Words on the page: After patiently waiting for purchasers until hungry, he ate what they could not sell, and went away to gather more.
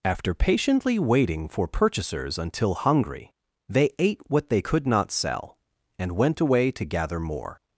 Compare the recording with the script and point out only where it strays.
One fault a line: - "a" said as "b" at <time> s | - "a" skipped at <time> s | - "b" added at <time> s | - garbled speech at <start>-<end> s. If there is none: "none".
- "he" said as "they" at 3.7 s